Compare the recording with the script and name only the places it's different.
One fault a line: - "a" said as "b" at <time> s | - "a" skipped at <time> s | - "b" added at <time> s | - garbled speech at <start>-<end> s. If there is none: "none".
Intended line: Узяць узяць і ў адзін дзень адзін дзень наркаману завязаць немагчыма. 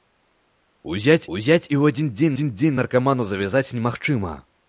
none